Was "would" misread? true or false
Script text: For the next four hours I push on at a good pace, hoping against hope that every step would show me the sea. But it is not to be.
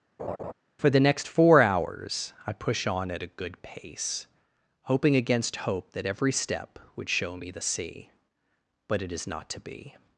false